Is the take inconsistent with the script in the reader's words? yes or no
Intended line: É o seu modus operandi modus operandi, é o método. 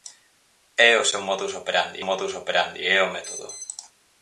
no